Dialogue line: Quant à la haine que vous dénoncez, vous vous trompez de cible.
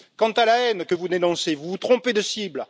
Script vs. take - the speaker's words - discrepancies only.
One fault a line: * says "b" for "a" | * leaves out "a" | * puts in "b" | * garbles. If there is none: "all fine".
all fine